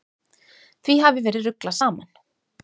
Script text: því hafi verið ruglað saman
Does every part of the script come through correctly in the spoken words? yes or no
yes